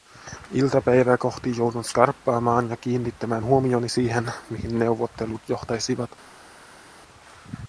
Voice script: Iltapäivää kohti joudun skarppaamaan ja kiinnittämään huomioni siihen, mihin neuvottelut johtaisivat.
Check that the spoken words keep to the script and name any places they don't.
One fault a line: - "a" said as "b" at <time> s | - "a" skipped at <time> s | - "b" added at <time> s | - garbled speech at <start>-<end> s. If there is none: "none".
none